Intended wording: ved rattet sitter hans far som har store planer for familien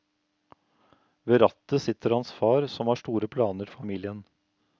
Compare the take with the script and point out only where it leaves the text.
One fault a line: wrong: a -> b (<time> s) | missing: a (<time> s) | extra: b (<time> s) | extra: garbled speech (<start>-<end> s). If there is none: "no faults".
missing: for (3.7 s)